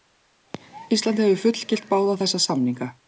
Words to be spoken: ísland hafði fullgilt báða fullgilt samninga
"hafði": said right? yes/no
no